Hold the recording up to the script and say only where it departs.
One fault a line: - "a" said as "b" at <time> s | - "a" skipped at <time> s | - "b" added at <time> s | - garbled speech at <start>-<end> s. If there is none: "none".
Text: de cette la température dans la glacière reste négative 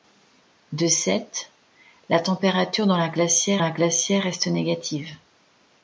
- "la glacière" added at 3.6 s